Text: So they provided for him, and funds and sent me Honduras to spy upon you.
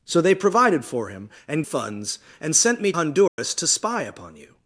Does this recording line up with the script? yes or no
yes